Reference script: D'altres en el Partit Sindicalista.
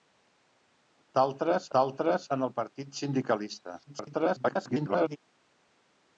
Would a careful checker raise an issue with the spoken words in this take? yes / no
yes